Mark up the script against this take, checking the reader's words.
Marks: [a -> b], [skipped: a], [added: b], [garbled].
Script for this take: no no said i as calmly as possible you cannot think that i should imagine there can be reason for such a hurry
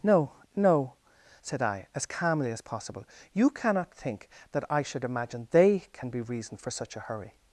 no no said i as calmly as possible you cannot think that i should imagine [there -> they] can be reason for such a hurry